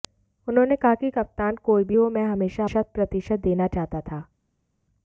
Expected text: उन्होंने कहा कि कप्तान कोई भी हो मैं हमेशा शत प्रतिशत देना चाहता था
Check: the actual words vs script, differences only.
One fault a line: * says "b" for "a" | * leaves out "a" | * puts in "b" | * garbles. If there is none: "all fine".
all fine